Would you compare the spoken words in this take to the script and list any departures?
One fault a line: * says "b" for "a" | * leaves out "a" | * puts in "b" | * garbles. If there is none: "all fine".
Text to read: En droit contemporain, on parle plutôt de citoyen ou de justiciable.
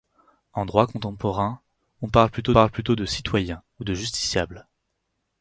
* puts in "parle plutôt"